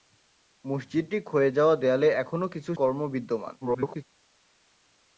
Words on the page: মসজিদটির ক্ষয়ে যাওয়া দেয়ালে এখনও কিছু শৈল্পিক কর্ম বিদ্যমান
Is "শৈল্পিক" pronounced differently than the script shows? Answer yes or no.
yes